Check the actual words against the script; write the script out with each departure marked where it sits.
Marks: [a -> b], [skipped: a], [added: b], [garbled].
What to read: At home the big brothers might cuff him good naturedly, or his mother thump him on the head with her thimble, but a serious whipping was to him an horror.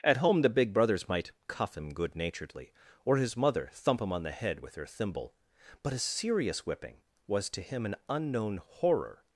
At home the big brothers might cuff him good naturedly, or his mother thump him on the head with her thimble, but a serious whipping was to him an [added: unknown] horror.